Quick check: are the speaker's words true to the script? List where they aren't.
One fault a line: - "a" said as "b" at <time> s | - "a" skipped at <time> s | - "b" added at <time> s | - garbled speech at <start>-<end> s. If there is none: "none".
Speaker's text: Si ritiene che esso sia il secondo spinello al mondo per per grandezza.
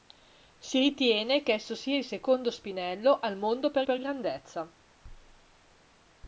none